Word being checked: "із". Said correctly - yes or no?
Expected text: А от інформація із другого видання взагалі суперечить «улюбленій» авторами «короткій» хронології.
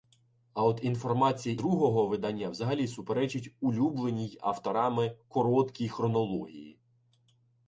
no